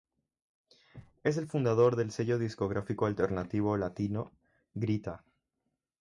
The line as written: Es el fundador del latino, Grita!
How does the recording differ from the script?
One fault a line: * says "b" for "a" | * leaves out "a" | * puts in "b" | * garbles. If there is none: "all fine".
* puts in "sello discográfico alternativo"